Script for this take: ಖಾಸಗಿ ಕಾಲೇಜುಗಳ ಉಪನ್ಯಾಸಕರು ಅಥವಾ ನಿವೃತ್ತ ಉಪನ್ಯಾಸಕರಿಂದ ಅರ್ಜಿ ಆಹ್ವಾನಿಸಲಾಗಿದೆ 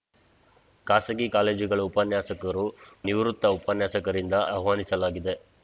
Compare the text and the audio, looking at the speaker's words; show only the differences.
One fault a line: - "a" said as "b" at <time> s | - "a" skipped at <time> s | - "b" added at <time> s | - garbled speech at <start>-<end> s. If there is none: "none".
- "ಅಥವಾ" skipped at 2.6 s
- "ಅರ್ಜಿ" skipped at 4.3 s